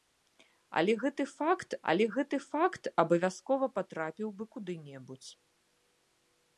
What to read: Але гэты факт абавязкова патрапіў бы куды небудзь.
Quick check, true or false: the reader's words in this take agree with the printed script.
false